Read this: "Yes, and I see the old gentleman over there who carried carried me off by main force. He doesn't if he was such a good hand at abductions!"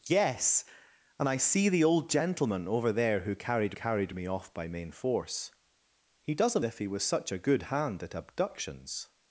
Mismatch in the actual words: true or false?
false